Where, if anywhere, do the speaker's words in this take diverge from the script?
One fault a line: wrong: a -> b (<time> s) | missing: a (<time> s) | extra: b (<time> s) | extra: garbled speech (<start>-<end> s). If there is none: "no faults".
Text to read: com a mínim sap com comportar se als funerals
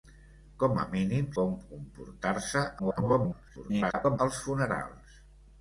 missing: sap (1.3 s)
extra: garbled speech (2.8-4.2 s)